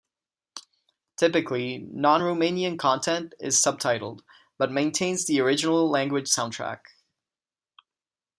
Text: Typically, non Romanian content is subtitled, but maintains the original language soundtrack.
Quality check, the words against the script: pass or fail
pass